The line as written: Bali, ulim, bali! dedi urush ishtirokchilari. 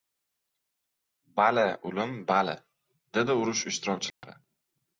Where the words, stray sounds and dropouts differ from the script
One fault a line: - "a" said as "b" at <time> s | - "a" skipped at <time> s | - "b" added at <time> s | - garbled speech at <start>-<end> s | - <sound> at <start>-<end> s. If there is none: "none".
- dropout at 4.1-4.2 s